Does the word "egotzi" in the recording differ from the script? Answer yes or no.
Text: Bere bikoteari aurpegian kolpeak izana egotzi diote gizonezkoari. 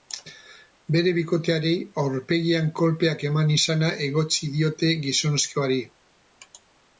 no